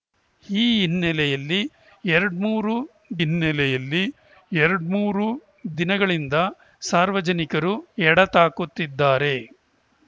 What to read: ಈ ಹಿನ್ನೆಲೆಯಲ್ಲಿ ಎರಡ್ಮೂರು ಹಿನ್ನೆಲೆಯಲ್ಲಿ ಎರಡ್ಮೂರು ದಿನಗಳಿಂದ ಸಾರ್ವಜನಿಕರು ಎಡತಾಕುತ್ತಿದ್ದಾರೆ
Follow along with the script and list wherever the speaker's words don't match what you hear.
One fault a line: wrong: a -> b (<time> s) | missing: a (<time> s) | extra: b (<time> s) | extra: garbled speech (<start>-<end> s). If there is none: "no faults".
no faults